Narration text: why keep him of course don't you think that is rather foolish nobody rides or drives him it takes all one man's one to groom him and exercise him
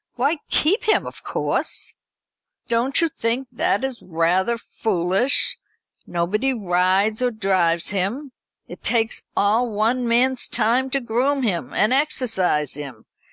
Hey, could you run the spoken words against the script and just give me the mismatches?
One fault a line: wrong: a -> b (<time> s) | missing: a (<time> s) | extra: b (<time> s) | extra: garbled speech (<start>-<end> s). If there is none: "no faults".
wrong: one -> time (10.5 s)